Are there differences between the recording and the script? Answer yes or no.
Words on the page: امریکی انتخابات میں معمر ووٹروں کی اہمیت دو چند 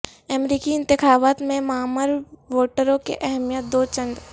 no